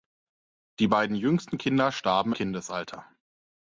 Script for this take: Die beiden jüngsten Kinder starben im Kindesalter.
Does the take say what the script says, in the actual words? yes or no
no